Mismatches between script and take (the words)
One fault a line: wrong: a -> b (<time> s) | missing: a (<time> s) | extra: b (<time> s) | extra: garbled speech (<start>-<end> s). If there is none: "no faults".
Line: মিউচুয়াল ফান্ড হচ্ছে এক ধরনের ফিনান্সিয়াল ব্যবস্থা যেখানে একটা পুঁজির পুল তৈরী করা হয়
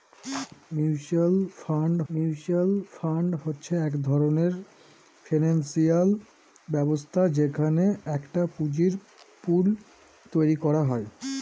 extra: মিউচুয়াল ফান্ড (2.1 s)